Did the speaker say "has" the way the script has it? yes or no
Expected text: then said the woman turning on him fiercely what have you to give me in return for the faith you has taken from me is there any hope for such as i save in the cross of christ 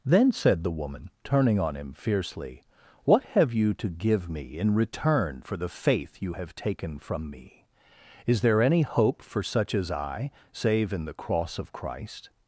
no